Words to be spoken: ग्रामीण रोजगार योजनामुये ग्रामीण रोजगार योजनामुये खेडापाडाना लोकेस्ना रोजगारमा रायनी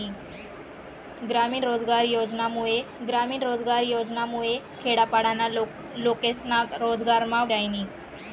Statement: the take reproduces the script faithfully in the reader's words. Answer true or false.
true